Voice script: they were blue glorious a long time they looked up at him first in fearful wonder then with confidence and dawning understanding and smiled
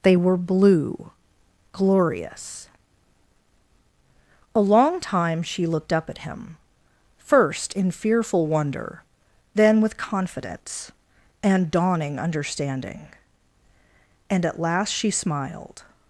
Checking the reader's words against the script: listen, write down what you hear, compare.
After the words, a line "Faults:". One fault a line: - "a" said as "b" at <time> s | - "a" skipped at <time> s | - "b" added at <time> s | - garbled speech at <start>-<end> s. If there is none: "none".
they were blue glorious a long time she looked up at him first in fearful wonder then with confidence and dawning understanding and at last she smiled
Faults:
- "they" said as "she" at 5.4 s
- "at last she" added at 14.5 s